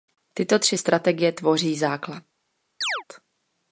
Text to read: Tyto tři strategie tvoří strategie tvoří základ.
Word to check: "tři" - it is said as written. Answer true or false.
true